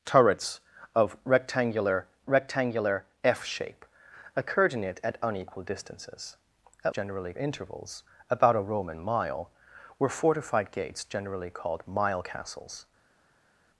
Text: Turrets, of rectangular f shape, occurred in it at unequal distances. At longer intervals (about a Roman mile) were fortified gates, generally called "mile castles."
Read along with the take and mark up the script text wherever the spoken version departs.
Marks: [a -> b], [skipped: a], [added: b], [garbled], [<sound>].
Turrets, of rectangular [added: rectangular] f shape, occurred in it at unequal distances. At [longer -> generally] intervals (about a Roman mile) were fortified gates, generally called "mile castles."